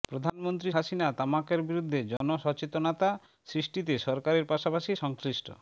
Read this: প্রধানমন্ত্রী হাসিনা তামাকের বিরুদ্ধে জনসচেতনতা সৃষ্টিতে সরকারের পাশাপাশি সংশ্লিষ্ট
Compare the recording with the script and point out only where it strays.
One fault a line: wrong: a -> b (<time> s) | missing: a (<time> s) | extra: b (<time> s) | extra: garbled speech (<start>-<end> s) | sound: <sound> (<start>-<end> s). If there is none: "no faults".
sound: dropout (2.2-2.2 s)